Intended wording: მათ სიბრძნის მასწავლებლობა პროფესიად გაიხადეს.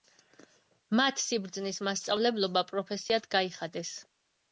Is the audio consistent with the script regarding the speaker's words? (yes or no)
yes